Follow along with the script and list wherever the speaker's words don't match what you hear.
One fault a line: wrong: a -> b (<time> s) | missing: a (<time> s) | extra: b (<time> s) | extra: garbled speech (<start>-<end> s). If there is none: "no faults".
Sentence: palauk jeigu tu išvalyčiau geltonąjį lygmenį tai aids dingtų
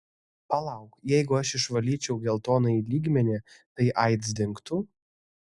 wrong: tu -> aš (1.4 s)